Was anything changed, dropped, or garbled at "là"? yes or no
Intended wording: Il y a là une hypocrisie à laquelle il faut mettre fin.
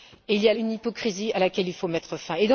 yes